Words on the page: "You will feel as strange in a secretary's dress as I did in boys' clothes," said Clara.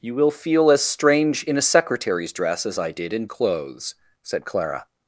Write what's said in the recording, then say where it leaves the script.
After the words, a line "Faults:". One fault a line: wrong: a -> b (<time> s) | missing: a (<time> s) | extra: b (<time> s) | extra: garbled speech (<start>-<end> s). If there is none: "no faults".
"You will feel as strange in a secretary's dress as I did in' clothes," said Clara.
Faults:
missing: boys (3.3 s)